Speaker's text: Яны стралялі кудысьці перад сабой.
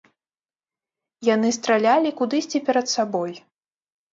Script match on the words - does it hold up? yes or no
yes